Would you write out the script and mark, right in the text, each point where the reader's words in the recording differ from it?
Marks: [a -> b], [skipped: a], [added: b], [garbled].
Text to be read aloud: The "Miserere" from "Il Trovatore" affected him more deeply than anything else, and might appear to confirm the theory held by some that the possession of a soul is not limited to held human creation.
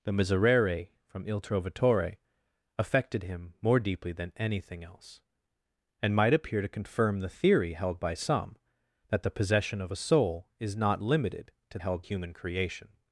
The "Miserere" from "Il Trovatore" affected him more deeply than anything else, and might appear to confirm the theory held by some that the possession of a soul is not limited to held human creation.